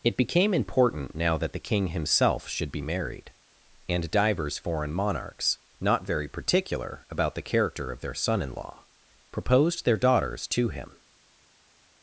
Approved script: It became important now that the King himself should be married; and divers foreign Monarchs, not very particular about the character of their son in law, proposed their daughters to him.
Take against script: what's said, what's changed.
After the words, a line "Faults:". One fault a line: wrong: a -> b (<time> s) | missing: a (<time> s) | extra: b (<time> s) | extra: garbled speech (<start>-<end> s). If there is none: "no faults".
It became important now that the King himself should be married; and divers foreign Monarchs, not very particular about the character of their son in law, proposed their daughters to him.
Faults:
no faults